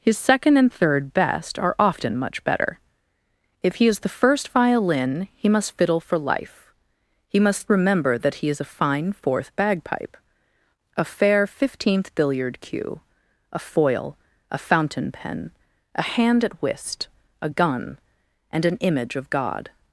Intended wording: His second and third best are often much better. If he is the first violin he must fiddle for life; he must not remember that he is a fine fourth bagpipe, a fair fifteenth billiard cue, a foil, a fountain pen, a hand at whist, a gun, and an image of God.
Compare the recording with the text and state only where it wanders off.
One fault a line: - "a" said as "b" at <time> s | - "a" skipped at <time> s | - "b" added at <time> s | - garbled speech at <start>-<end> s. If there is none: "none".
- "not" skipped at 7.7 s